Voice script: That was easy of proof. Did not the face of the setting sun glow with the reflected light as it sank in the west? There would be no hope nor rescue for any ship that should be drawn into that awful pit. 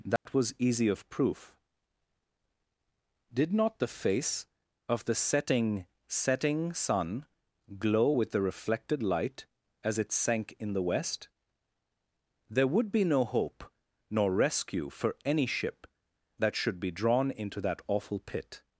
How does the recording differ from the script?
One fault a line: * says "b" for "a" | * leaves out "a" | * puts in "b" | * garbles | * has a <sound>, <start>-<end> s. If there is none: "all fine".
* has a dropout, 0.2-0.3 s
* puts in "setting"